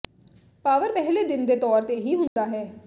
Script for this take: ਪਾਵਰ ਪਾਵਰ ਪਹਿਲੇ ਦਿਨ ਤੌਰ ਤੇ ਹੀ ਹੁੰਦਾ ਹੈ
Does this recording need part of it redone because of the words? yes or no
yes